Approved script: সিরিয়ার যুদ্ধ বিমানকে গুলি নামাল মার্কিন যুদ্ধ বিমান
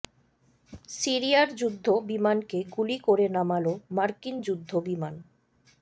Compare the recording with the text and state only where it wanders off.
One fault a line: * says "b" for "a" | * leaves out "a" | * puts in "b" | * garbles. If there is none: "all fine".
* puts in "করে"